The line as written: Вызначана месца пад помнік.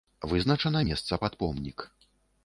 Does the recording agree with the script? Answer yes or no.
yes